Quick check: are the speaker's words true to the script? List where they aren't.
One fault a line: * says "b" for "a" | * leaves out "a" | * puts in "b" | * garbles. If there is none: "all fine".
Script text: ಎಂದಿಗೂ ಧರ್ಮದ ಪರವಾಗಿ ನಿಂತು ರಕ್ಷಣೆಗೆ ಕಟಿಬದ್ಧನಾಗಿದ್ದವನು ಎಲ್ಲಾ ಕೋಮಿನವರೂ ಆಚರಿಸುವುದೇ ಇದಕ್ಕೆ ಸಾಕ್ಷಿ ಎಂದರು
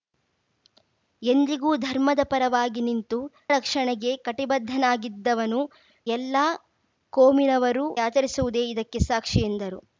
all fine